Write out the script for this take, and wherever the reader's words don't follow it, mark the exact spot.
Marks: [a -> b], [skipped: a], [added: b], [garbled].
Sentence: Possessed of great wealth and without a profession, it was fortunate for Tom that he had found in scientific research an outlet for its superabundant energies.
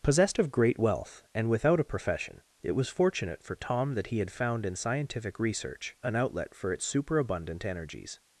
Possessed of great wealth and without a profession, it was fortunate for Tom that he had found in scientific research an outlet for its superabundant energies.